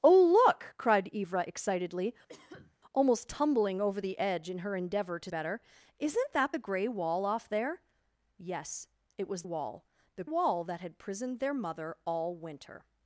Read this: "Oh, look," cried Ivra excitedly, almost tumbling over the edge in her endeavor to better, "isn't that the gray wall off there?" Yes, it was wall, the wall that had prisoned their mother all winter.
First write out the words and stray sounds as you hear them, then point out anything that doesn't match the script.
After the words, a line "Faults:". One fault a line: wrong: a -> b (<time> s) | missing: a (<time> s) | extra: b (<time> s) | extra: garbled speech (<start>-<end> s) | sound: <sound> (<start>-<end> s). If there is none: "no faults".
"Oh, look," cried Ivra excitedly, almost tumbling over the edge in her endeavor to better, "isn't that the gray wall off there?" Yes, it was wall, the wall that had prisoned their mother all winter.
Faults:
sound: cough (2.3-2.8 s)